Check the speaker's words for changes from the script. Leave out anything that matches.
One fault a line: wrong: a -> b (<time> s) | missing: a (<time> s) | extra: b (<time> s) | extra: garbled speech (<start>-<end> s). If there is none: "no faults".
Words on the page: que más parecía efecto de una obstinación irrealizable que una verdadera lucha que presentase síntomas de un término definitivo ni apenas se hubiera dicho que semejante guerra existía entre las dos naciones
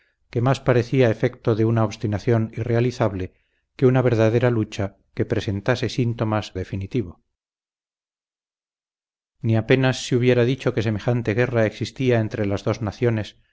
missing: de un término (6.5 s)